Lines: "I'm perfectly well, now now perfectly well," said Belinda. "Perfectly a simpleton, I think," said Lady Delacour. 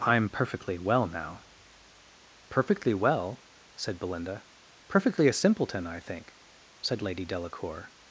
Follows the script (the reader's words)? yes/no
no